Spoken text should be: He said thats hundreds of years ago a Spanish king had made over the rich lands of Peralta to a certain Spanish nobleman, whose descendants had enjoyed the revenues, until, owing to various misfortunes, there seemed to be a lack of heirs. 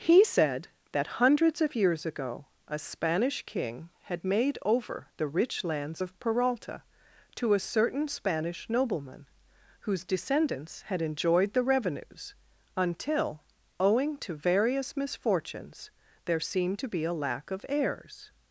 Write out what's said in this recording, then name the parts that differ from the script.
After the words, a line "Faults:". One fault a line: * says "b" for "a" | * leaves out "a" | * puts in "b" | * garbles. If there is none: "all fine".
He said that hundreds of years ago a Spanish king had made over the rich lands of Peralta to a certain Spanish nobleman, whose descendants had enjoyed the revenues, until, owing to various misfortunes, there seemed to be a lack of heirs.
Faults:
* says "that" for "thats"